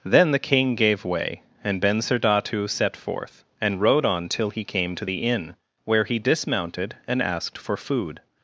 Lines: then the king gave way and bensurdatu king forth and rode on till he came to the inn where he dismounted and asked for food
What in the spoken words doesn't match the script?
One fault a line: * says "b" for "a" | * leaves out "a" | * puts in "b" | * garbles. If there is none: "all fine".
* says "set" for "king"